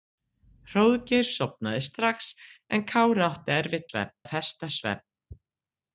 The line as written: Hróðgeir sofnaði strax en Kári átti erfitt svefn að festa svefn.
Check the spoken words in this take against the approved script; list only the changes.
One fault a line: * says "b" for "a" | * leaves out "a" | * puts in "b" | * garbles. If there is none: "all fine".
all fine